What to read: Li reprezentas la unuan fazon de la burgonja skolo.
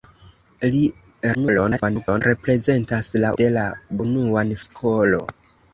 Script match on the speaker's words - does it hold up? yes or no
no